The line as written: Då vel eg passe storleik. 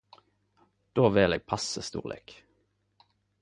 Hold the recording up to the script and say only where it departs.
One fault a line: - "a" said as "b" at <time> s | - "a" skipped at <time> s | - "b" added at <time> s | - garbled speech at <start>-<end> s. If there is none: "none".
none